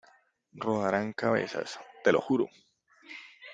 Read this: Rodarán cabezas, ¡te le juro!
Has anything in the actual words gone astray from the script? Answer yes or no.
yes